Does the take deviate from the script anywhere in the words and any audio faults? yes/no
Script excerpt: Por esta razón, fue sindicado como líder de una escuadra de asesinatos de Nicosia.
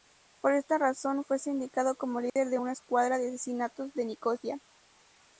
yes